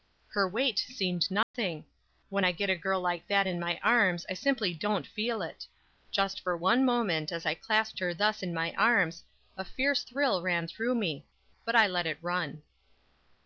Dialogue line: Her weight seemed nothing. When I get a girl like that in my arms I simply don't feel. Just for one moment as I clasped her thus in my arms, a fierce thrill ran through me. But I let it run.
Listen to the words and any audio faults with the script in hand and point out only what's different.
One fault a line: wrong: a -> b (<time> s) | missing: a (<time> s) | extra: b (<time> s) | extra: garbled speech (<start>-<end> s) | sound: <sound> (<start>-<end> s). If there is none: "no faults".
sound: dropout (1.4-1.5 s)
extra: it (5.4 s)